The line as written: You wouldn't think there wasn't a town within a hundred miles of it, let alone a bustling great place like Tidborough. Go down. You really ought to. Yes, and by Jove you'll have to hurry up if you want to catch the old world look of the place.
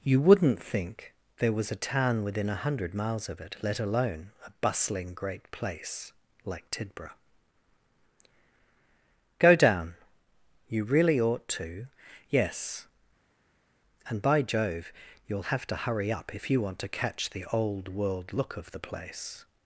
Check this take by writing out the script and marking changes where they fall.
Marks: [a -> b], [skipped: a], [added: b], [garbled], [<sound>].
You wouldn't think there [wasn't -> was] a town within a hundred miles of it, let alone a bustling great place like Tidborough. Go down. You really ought to. Yes, and by Jove you'll have to hurry up if you want to catch the old world look of the place.